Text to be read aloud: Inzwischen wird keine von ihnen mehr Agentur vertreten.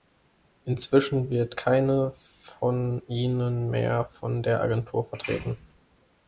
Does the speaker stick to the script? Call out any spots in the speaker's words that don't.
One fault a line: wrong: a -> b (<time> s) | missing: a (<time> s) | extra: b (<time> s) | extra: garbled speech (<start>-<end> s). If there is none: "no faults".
extra: von der (4.0 s)